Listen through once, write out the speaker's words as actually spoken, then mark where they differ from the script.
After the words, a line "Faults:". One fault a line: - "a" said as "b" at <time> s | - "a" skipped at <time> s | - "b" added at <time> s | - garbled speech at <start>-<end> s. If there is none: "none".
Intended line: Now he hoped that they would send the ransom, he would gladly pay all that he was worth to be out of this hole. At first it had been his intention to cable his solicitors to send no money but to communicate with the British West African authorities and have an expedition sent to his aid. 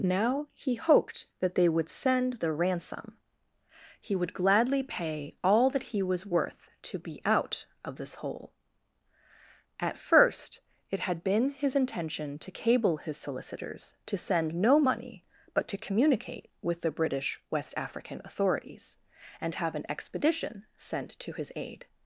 Now he hoped that they would send the ransom, he would gladly pay all that he was worth to be out of this hole. At first it had been his intention to cable his solicitors to send no money but to communicate with the British West African authorities and have an expedition sent to his aid.
Faults:
none